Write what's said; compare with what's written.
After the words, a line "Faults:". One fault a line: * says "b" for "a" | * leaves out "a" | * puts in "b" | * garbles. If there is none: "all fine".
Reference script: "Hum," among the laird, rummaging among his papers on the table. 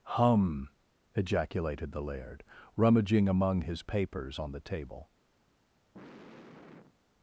"Hum," ejaculated the laird, rummaging among his papers on the table.
Faults:
* says "ejaculated" for "among"